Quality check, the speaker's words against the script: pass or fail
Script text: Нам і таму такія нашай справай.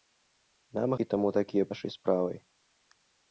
pass